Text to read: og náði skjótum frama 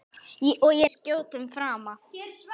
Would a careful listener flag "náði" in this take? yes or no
yes